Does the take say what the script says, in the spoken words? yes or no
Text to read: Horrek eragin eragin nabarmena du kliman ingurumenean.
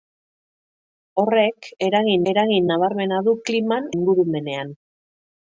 yes